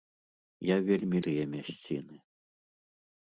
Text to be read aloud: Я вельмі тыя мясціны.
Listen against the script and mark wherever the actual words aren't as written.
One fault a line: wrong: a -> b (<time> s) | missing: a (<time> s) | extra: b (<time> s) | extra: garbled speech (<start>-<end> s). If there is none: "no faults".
no faults